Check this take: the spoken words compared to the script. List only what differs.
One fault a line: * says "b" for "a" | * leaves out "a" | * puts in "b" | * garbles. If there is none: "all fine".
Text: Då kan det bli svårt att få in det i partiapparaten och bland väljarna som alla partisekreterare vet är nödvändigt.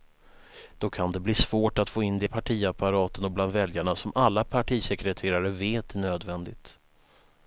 all fine